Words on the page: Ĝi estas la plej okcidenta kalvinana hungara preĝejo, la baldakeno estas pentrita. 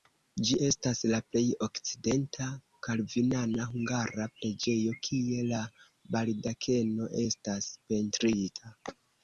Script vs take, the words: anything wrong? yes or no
yes